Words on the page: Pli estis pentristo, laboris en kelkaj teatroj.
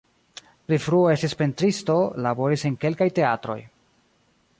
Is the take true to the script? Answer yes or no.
no